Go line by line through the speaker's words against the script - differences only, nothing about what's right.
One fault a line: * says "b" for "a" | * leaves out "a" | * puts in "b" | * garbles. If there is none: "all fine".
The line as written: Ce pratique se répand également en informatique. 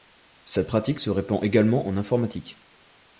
* says "Cette" for "Ce"